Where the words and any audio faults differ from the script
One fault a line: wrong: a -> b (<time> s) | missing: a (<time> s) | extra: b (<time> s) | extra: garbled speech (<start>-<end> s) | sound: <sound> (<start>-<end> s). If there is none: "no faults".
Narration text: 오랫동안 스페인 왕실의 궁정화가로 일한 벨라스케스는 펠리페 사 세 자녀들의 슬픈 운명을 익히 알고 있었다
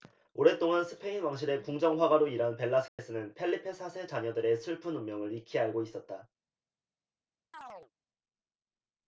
sound: dropout (2.9-3.0 s)
sound: chirp (7.5-7.9 s)